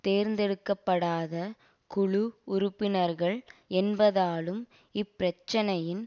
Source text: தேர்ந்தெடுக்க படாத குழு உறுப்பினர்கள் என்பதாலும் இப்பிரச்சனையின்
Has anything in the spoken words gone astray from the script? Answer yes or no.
no